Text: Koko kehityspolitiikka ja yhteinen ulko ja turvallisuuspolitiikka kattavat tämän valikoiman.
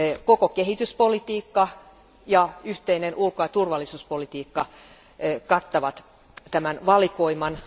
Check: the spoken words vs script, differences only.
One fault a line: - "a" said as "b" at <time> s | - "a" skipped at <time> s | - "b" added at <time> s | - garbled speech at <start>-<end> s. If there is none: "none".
none